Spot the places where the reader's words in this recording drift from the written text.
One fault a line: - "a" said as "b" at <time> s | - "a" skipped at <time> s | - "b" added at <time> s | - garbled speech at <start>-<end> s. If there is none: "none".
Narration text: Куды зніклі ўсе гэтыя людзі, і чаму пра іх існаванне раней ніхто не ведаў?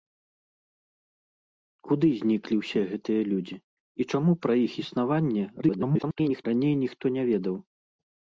- garbled speech at 5.6-6.4 s